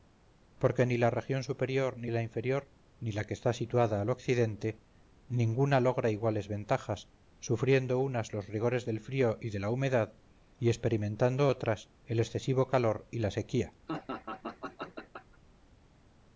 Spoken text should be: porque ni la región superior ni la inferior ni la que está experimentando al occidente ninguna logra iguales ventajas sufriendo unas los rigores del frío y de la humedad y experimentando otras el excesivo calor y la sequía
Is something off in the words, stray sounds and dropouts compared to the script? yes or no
yes